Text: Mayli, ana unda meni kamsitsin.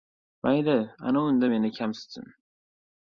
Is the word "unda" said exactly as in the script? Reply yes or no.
yes